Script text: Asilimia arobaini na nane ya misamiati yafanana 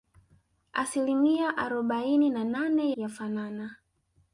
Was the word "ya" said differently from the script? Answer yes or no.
yes